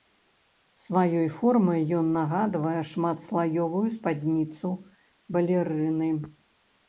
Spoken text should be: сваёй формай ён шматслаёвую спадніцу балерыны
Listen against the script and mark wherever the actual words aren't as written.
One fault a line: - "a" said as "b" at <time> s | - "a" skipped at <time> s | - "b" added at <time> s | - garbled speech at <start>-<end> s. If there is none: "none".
- "нагадвае" added at 2.2 s